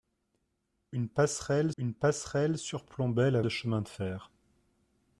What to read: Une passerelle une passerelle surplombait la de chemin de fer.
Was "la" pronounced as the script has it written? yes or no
yes